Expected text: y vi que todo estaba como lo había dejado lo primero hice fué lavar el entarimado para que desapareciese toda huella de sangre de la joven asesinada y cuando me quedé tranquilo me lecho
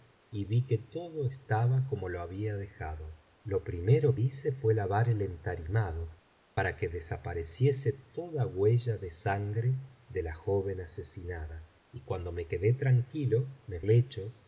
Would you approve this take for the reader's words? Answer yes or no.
yes